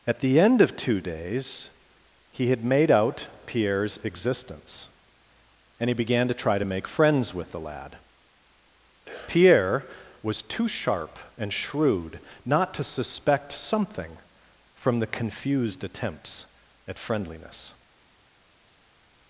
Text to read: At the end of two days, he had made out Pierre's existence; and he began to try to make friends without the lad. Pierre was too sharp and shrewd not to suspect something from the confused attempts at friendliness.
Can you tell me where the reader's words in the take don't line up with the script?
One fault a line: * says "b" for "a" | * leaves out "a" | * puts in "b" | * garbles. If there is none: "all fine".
* says "with" for "without"